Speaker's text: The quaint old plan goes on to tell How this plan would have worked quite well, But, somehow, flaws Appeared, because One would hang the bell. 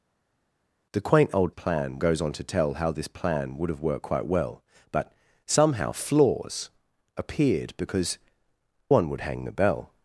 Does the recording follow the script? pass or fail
pass